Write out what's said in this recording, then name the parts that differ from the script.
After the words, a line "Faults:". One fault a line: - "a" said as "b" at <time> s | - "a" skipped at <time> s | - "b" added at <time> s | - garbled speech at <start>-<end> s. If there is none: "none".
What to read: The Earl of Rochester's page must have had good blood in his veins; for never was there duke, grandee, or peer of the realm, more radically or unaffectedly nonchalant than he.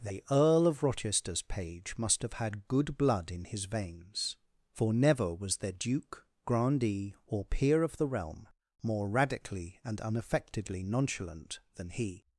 The Earl of Rochester's page must have had good blood in his veins; for never was there duke, grandee, or peer of the realm, more radically and unaffectedly nonchalant than he.
Faults:
- "or" said as "and" at 9.8 s